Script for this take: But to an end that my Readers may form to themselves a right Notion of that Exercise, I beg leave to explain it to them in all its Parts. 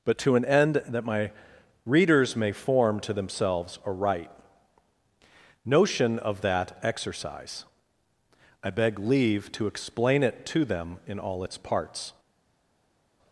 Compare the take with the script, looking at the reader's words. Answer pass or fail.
pass